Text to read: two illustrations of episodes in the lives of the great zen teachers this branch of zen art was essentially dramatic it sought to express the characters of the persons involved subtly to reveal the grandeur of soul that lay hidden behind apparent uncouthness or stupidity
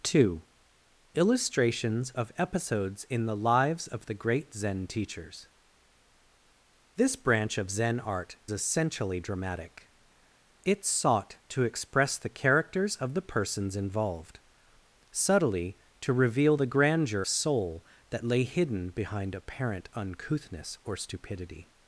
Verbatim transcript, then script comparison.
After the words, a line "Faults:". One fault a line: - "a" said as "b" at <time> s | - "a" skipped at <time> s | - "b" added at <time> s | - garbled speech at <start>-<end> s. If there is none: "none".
two illustrations of episodes in the lives of the great zen teachers this branch of zen art essentially dramatic it sought to express the characters of the persons involved subtly to reveal the grandeur soul that lay hidden behind apparent uncouthness or stupidity
Faults:
- "was" skipped at 8.4 s
- "of" skipped at 17.2 s